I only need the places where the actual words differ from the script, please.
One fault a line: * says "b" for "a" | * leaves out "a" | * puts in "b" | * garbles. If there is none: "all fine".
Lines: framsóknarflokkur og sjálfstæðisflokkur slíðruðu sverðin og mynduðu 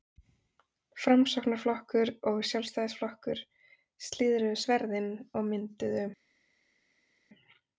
all fine